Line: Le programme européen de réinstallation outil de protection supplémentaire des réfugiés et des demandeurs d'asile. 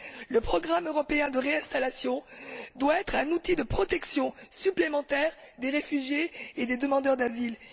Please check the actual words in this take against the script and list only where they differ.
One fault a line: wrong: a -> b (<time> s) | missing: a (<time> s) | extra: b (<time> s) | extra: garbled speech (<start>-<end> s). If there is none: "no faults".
extra: doit être un (2.8 s)